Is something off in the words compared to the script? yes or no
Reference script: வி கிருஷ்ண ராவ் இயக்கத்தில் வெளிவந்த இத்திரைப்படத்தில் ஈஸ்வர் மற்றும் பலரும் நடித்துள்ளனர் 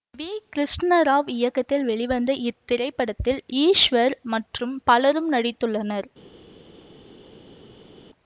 no